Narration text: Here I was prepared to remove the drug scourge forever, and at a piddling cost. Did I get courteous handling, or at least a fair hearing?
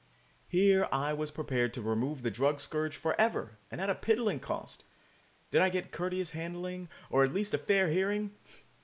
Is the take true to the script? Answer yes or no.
yes